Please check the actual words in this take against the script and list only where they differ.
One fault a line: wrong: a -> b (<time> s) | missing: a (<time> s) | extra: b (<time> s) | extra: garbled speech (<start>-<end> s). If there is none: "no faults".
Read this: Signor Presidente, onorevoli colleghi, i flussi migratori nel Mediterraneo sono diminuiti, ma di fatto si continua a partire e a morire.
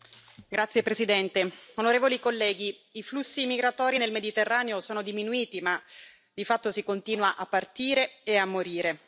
no faults